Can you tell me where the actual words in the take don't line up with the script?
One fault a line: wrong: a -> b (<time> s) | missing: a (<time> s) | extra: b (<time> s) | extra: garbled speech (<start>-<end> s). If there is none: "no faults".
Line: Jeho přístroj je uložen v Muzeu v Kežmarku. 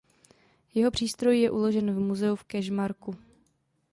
no faults